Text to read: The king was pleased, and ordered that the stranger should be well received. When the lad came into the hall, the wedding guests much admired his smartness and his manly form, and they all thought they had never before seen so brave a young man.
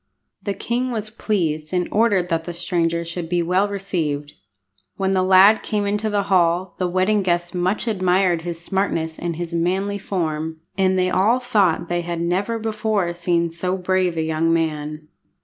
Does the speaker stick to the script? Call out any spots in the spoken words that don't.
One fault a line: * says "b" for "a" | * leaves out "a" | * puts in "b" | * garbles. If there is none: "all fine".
all fine